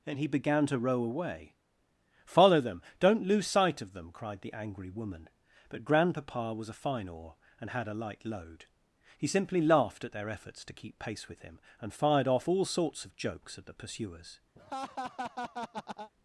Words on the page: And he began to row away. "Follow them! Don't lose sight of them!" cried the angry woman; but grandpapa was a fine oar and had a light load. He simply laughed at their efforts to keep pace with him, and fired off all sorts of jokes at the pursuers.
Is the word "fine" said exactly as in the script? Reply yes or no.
yes